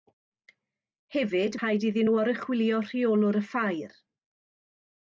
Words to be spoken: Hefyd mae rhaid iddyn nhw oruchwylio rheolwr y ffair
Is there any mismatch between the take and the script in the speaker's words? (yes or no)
yes